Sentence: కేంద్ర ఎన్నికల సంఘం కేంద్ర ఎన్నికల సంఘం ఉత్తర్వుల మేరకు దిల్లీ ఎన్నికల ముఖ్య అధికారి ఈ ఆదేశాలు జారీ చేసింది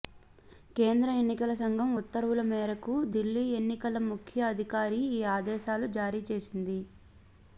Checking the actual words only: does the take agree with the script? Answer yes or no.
no